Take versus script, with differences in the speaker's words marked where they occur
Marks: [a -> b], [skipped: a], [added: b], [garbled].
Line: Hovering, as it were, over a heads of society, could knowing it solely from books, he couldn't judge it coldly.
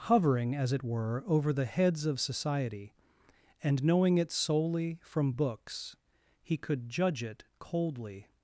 Hovering, as it were, over [a -> the] heads of society, [could -> and] knowing it solely from books, he [couldn't -> could] judge it coldly.